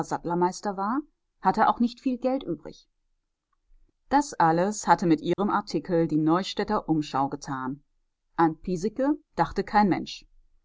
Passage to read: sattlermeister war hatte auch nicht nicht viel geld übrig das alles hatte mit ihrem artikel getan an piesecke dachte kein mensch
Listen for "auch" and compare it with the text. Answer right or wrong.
right